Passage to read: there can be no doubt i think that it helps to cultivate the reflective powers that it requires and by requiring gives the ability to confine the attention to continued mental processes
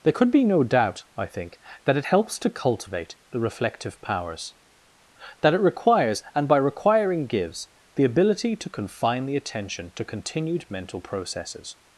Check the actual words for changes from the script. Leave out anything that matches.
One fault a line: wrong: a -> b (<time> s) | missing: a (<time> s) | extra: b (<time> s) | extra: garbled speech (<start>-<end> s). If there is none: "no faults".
wrong: can -> could (0.1 s)